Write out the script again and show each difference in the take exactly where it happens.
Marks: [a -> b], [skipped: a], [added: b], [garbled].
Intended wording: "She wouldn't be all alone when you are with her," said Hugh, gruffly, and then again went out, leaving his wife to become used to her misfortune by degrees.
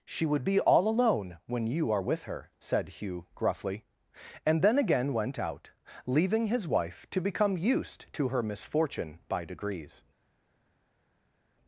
"She [wouldn't -> would] be all alone when you are with her," said Hugh, gruffly, and then again went out, leaving his wife to become used to her misfortune by degrees.